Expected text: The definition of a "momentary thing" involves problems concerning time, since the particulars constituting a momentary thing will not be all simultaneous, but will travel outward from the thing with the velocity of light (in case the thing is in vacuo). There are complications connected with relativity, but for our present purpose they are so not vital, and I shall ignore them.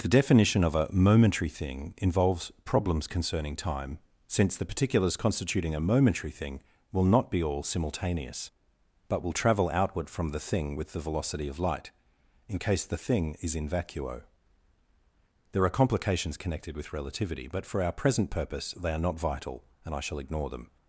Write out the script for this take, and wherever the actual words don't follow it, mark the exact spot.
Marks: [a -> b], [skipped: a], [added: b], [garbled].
The definition of a "momentary thing" involves problems concerning time, since the particulars constituting a momentary thing will not be all simultaneous, but will travel outward from the thing with the velocity of light (in case the thing is in vacuo). There are complications connected with relativity, but for our present purpose they are [skipped: so] not vital, and I shall ignore them.